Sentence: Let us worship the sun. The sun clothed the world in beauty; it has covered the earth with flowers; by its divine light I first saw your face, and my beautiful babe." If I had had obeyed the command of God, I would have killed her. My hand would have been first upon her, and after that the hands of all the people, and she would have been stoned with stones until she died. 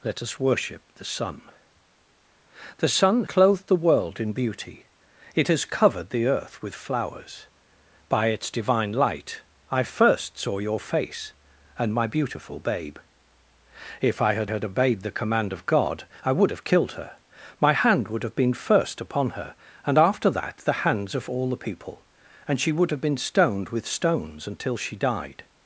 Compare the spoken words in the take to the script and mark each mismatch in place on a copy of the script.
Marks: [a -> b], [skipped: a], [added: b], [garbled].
Let us worship the sun. The sun clothed the world in beauty; it has covered the earth with flowers; by its divine light I first saw your face, and my beautiful babe." If I had had obeyed the command of God, I would have killed her. My hand would have been first upon her, and after that the hands of all the people, and she would have been stoned with stones until she died.